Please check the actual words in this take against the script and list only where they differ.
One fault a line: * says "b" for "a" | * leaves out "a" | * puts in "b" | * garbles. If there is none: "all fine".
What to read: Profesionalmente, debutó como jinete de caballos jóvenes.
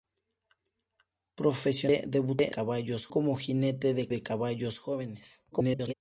* says "caballos" for "debutó"
* puts in "de"
* garbles